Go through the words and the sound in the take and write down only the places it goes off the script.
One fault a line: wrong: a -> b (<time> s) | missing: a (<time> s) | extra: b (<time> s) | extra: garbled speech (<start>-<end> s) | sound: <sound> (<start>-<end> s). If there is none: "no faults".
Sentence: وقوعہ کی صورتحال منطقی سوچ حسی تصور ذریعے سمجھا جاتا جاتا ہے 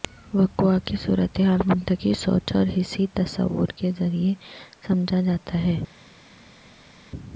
extra: اور (2.5 s)
extra: کے (3.8 s)
missing: جاتا (5.6 s)